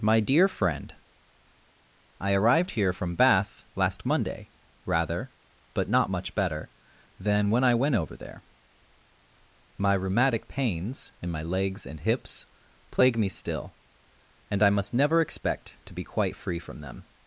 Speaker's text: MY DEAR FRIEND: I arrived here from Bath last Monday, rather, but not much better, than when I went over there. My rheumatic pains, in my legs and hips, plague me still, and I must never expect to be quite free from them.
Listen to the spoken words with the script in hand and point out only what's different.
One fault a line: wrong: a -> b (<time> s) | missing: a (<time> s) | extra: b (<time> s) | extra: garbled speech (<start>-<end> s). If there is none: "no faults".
no faults